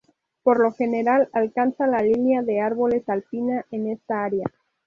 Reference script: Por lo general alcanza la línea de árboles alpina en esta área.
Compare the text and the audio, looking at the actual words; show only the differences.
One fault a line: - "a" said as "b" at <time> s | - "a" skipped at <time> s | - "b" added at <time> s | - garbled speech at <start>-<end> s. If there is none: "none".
none